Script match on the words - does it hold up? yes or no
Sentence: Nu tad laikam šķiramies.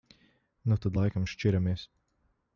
yes